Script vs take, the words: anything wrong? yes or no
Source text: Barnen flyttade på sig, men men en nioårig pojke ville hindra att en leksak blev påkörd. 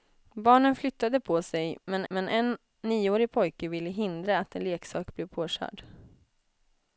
no